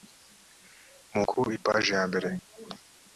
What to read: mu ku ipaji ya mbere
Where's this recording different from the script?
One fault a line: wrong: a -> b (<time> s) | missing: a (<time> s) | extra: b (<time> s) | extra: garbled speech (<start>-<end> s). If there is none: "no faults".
no faults